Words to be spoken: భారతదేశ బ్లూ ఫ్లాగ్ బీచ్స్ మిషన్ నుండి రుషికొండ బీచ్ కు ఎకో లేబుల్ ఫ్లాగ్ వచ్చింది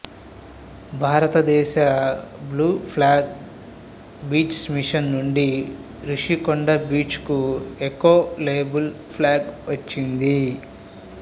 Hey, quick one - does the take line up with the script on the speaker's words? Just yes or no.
yes